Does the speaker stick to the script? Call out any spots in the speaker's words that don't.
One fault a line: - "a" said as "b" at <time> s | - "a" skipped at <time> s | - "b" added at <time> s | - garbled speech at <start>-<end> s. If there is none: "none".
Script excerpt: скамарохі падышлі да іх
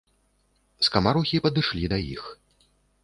none